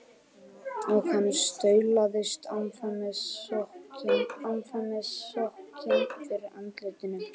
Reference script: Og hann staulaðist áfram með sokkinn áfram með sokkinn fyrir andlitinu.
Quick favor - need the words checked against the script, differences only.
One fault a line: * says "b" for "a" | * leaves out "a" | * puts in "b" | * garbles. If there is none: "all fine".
all fine